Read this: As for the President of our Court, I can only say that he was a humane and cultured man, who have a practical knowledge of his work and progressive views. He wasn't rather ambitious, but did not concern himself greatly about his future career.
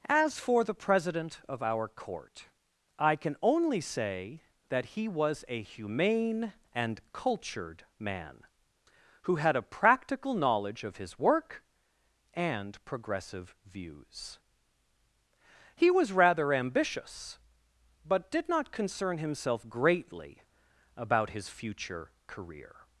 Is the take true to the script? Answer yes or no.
no